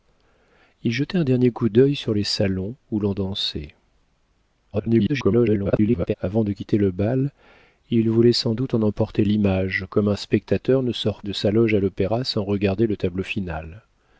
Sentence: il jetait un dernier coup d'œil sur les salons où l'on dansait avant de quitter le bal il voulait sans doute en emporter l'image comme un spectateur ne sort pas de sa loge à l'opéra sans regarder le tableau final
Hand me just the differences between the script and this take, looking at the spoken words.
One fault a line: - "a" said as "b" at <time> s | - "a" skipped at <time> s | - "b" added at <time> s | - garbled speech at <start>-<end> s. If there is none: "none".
- garbled speech at 4.7-6.2 s
- "pas" skipped at 11.2 s